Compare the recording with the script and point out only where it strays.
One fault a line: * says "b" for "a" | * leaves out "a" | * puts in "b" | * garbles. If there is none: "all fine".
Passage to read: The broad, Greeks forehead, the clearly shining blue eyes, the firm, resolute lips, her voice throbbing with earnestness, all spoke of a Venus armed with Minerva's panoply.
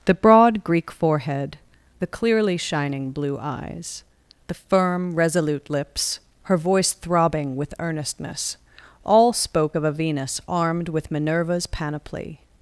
* says "Greek" for "Greeks"